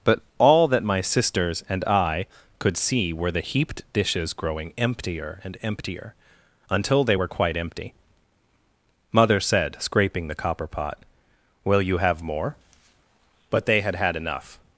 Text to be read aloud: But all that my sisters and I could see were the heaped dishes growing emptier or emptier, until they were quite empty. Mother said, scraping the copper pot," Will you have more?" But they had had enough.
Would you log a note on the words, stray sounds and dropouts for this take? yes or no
yes